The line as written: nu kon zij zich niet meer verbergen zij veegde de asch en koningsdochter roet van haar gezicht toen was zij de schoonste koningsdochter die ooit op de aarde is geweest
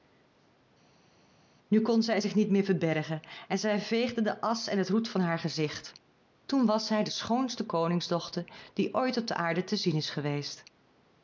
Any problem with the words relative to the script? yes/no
yes